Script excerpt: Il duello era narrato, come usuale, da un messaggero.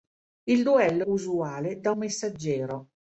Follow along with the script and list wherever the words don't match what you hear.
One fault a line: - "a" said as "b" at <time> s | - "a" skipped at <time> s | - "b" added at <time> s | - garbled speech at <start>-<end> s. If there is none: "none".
- "era narrato come" skipped at 1.1 s
- "un" skipped at 1.9 s